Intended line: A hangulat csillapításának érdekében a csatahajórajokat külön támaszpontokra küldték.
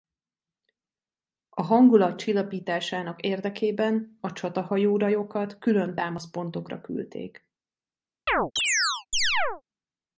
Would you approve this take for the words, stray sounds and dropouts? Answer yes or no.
no